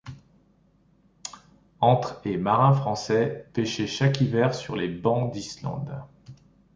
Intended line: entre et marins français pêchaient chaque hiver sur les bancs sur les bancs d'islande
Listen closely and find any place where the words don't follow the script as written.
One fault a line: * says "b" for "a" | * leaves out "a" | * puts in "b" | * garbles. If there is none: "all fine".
* leaves out "sur les bancs"